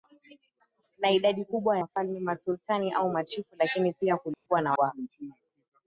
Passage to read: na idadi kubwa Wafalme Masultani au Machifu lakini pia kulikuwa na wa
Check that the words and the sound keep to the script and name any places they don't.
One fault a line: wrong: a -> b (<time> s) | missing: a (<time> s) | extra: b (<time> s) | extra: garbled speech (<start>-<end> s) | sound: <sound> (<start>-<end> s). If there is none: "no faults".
sound: dropout (4.3-4.5 s)